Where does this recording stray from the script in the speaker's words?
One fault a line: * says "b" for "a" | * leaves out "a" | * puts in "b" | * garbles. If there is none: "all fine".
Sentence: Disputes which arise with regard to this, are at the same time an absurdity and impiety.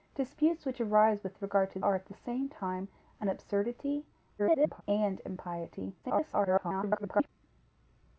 * leaves out "this"
* garbles
* garbles